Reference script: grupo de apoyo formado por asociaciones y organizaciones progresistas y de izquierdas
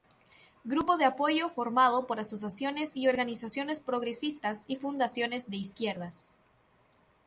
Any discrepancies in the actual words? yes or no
yes